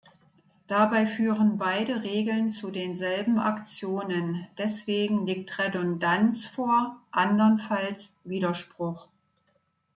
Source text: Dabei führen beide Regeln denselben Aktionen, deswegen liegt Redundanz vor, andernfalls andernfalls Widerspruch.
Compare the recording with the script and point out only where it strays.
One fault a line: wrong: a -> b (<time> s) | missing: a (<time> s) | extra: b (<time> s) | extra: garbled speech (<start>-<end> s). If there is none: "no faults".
extra: zu (2.5 s)
missing: andernfalls (8.1 s)